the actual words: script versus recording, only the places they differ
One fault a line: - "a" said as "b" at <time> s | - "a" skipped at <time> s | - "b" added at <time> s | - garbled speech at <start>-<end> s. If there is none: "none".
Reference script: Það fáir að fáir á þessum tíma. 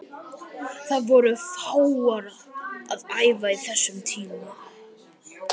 - "voru" added at 1.1 s
- "fáir" said as "æfa" at 3.3 s